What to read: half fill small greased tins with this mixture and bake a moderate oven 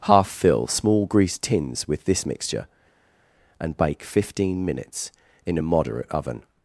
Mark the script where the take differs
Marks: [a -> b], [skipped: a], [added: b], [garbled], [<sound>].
half fill small greased tins with this mixture and bake [added: fifteen minutes in] a moderate oven